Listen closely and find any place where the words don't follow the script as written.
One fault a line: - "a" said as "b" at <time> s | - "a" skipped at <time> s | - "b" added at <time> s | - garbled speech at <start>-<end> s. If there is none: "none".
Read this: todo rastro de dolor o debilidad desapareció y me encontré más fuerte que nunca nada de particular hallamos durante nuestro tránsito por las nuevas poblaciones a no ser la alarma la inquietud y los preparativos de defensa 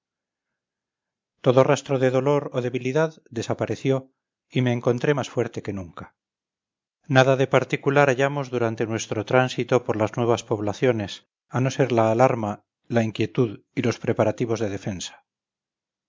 none